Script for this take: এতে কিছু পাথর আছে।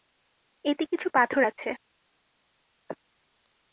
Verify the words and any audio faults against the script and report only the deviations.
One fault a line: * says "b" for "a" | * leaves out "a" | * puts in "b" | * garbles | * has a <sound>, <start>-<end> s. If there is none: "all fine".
all fine